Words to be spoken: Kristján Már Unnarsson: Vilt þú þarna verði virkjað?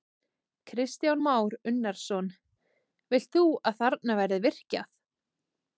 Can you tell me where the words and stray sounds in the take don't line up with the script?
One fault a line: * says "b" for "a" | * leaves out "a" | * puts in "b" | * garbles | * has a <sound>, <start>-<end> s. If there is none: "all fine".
* puts in "að"